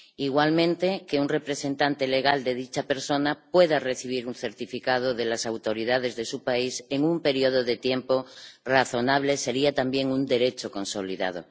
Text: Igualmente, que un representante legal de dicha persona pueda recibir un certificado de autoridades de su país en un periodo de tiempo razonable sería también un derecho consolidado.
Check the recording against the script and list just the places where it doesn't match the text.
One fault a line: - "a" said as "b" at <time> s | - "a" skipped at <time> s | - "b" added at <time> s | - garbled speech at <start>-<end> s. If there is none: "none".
- "las" added at 5.2 s